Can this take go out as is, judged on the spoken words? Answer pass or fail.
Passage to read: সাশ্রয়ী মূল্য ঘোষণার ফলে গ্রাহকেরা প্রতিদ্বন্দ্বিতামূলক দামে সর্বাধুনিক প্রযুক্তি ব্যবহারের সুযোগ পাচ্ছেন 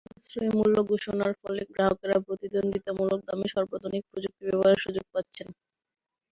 pass